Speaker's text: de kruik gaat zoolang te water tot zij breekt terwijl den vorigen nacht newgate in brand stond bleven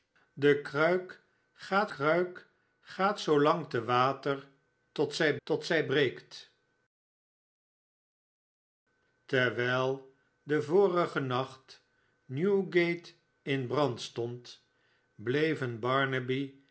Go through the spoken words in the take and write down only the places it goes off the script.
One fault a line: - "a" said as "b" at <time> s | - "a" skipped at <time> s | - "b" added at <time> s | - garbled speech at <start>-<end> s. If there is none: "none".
- "kruik gaat" added at 1.9 s
- "tot zij" added at 5.4 s